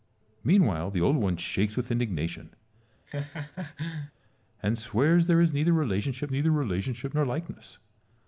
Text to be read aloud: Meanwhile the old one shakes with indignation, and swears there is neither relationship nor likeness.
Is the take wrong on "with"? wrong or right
right